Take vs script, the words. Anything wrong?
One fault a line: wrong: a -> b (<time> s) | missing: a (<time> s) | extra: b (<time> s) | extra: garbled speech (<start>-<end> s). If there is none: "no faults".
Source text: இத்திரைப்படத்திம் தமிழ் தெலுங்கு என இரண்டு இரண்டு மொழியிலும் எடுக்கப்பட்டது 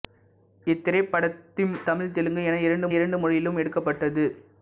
no faults